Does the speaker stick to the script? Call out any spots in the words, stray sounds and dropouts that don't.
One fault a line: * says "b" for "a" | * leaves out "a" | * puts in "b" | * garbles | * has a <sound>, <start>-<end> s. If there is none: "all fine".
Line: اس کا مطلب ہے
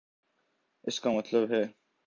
all fine